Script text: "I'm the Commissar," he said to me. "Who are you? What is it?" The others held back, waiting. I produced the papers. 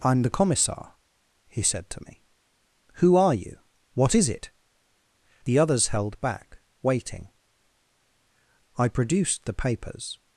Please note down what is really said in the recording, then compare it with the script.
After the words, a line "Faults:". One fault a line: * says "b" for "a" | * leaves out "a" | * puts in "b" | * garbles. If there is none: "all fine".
"I'm the Commissar," he said to me. "Who are you? What is it?" The others held back, waiting. I produced the papers.
Faults:
all fine